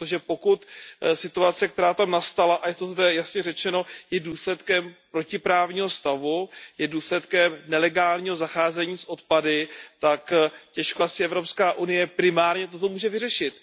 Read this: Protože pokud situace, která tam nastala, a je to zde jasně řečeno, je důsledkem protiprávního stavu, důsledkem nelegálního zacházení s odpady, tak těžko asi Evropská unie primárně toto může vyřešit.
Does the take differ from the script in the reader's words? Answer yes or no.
yes